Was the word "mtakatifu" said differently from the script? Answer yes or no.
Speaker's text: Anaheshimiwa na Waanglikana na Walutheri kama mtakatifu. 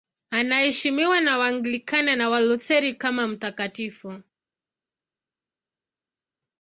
no